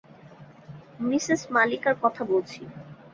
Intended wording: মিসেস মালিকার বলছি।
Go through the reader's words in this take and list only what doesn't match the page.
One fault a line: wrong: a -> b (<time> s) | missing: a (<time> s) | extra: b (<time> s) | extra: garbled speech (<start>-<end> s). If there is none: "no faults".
extra: কথা (2.0 s)